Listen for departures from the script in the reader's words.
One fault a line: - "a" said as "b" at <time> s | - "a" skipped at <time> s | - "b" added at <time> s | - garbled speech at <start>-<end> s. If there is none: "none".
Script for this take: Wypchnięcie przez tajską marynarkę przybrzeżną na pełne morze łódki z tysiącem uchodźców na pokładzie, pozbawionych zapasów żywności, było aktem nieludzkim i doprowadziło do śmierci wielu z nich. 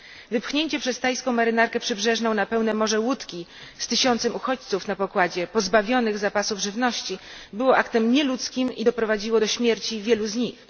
none